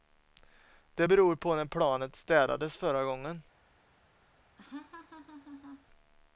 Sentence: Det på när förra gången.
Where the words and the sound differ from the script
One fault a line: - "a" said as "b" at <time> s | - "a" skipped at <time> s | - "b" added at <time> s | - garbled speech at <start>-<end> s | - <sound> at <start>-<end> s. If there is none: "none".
- "beror" added at 1.0 s
- "planet städades" added at 1.6 s
- laugh at 4.6-5.9 s